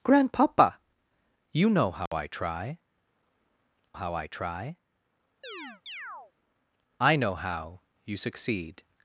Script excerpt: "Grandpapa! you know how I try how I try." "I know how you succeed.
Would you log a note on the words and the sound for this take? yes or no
yes